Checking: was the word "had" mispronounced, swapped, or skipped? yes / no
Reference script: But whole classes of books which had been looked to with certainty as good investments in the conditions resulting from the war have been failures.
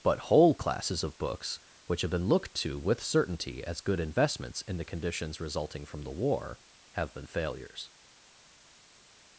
yes